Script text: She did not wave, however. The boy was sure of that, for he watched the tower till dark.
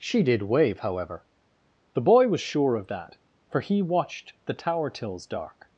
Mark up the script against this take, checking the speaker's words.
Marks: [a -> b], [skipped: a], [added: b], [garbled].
She did [skipped: not] wave, however. The boy was sure of that, for he watched the tower [till -> tills] dark.